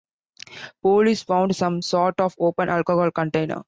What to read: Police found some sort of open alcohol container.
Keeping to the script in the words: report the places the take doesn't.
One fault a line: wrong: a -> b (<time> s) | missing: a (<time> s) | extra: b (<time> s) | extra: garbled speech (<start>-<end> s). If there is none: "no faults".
no faults